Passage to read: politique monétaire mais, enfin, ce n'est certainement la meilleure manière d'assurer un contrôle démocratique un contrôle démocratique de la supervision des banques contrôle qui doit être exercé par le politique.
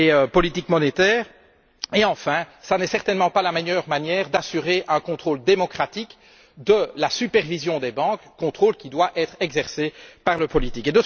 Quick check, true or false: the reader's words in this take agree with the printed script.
false